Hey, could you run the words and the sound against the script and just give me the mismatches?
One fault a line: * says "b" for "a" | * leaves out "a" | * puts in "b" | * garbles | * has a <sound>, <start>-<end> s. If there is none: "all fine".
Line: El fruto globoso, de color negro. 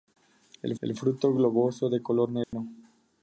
* puts in "el"
* has a dropout, 2.4-2.5 s